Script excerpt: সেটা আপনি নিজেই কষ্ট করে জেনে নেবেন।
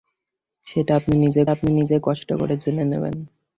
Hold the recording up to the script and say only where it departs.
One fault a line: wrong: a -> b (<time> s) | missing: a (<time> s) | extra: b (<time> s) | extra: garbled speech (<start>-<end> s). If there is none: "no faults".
extra: আপনি নিজেই (1.5 s)